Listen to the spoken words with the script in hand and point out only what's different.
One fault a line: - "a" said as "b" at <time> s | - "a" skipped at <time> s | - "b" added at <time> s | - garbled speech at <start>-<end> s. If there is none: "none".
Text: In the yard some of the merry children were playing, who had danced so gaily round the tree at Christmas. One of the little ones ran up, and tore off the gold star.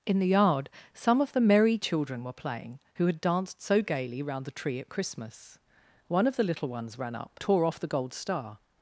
- "and" skipped at 7.4 s